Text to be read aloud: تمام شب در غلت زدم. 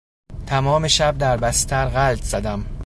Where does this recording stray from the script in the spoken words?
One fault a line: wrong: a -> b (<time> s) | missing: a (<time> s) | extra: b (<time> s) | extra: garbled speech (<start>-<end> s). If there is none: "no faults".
extra: بستر (1.4 s)